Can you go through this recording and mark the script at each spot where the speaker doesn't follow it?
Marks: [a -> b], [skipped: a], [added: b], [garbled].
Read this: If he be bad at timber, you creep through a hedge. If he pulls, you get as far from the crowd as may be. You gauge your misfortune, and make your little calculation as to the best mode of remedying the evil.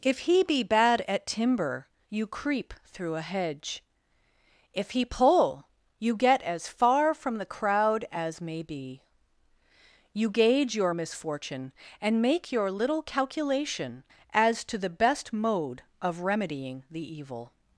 If he be bad at timber, you creep through a hedge. If he [pulls, -> pull] you get as far from the crowd as may be. You gauge your misfortune, and make your little calculation as to the best mode of remedying the evil.